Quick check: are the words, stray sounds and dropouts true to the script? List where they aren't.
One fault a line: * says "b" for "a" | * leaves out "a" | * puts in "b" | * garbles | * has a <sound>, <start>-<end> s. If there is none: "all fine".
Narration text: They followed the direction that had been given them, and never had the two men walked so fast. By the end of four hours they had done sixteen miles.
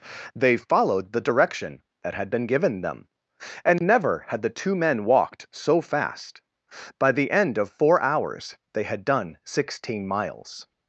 all fine